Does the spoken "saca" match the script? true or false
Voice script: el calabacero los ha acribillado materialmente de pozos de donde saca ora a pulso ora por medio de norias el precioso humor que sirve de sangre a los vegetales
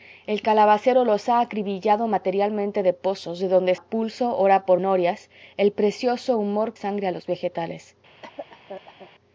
false